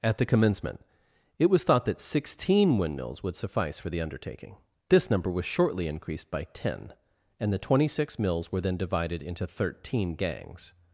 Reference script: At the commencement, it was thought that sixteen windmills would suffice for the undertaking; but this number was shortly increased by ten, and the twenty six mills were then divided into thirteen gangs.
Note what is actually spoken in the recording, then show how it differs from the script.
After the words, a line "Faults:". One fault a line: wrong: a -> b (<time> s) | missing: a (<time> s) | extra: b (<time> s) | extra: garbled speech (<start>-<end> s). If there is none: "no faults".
At the commencement, it was thought that sixteen windmills would suffice for the undertaking; this number was shortly increased by ten, and the twenty six mills were then divided into thirteen gangs.
Faults:
missing: but (4.6 s)